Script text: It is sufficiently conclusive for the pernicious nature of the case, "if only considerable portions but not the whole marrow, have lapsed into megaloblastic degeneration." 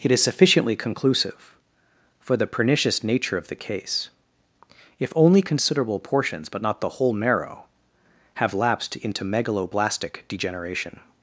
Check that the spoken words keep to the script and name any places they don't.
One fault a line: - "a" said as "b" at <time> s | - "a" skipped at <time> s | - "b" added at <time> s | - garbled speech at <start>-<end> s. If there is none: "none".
none